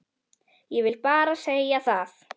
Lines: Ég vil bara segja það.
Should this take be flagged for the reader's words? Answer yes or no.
no